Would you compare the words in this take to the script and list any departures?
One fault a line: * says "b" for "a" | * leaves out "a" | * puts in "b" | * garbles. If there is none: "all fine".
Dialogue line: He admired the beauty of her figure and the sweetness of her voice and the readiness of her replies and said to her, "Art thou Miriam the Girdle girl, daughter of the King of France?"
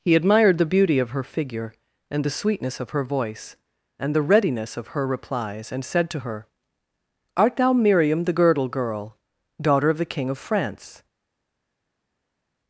all fine